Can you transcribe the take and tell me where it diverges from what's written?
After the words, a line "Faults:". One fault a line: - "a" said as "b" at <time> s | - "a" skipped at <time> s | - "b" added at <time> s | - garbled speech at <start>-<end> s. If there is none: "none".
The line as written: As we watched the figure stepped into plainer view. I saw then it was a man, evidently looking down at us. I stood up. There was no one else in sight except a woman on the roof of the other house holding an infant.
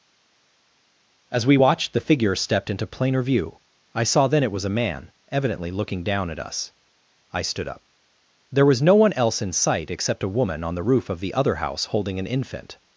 As we watched the figure stepped into plainer view. I saw then it was a man, evidently looking down at us. I stood up. There was no one else in sight except a woman on the roof of the other house holding an infant.
Faults:
none